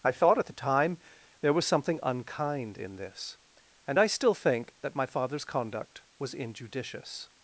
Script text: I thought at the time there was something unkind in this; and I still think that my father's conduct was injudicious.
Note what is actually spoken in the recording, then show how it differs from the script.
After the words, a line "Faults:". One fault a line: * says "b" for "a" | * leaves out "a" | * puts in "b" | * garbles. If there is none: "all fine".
I thought at the time there was something unkind in this; and I still think that my father's conduct was injudicious.
Faults:
all fine